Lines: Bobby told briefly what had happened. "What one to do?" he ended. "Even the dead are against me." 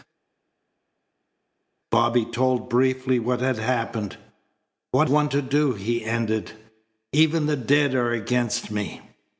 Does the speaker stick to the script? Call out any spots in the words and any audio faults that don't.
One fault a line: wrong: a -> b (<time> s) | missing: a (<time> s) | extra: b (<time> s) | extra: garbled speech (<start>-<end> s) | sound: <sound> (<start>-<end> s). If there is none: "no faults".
no faults